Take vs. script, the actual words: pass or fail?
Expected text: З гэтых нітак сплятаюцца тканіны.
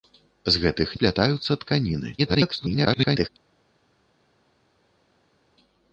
fail